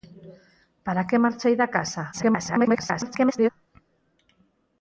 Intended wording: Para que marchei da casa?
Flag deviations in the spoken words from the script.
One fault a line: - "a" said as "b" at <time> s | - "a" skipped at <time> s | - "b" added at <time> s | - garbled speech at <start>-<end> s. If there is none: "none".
- garbled speech at 2.1-3.5 s